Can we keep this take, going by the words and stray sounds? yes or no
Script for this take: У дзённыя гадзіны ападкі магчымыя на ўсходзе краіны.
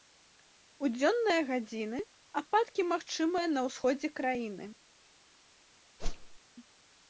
no